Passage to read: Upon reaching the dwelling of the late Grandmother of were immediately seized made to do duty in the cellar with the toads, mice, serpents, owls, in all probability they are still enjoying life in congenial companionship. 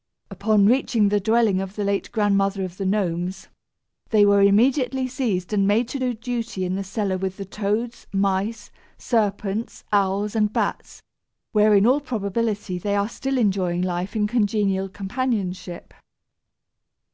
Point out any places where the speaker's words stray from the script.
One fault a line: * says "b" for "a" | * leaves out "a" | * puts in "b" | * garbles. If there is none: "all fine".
* puts in "the Gnomes they"
* puts in "and"
* puts in "and bats where"